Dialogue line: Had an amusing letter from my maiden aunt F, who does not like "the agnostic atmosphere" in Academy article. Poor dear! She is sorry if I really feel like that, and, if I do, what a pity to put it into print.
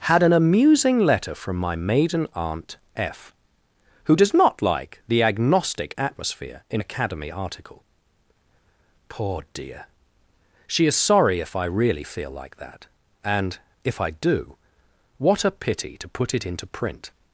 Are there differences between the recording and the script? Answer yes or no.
no